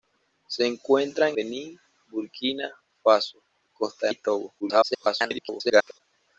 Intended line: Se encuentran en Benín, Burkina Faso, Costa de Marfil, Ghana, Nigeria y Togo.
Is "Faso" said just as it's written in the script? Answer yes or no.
yes